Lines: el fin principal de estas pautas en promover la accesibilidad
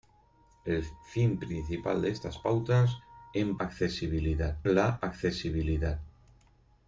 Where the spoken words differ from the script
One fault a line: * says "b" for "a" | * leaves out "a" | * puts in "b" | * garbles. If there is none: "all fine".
* says "accesibilidad" for "promover"